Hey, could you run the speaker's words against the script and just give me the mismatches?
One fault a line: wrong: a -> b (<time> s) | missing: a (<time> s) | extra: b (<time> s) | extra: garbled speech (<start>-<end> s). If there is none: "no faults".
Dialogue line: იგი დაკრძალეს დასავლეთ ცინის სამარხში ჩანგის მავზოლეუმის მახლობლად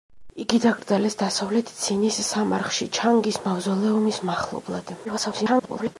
extra: garbled speech (5.0-6.0 s)